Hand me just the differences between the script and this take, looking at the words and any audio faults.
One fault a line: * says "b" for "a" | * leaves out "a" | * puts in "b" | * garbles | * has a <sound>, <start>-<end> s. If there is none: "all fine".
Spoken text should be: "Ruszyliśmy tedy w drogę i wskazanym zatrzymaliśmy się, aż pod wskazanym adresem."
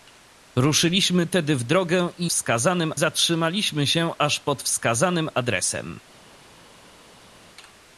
all fine